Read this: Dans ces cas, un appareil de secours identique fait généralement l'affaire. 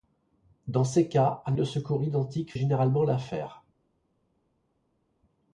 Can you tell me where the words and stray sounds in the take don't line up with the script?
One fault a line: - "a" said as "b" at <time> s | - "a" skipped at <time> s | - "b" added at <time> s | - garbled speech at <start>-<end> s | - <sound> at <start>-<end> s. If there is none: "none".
- "appareil" skipped at 1.6 s
- "fait" skipped at 2.5 s